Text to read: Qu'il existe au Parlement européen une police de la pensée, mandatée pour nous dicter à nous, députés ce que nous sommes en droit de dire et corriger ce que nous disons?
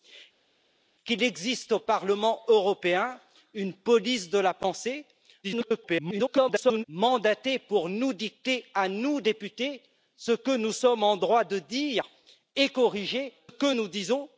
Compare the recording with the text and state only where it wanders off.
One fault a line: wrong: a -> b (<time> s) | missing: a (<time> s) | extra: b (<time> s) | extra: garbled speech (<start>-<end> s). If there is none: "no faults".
extra: garbled speech (5.4-6.8 s)
missing: ce (13.3 s)